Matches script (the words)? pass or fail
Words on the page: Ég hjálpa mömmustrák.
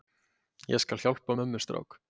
fail